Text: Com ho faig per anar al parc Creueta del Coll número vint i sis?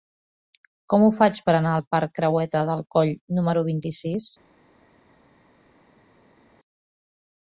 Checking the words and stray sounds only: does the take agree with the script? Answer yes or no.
yes